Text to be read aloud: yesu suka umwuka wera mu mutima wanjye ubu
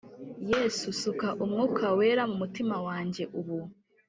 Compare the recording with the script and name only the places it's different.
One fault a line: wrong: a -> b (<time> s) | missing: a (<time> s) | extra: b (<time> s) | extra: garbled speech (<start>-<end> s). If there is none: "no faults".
no faults